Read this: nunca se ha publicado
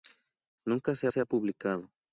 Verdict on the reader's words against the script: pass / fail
fail